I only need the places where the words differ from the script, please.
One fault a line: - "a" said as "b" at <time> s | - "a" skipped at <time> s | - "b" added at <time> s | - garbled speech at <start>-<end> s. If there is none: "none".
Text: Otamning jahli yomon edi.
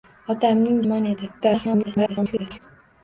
- "jahli" skipped at 0.8 s
- garbled speech at 1.4-2.6 s